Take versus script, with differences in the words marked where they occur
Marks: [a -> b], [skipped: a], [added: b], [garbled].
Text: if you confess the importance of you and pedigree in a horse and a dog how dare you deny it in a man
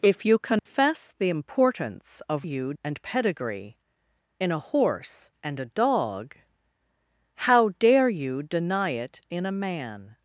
if you confess the importance of you and pedigree in a horse and a dog how dare you deny it in a man